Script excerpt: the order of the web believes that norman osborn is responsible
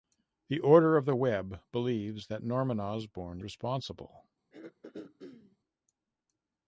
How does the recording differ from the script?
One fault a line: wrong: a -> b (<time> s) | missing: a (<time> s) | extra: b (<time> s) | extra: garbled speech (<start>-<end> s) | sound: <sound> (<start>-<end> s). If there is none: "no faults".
missing: is (3.4 s)
sound: throat clearing (4.5-5.6 s)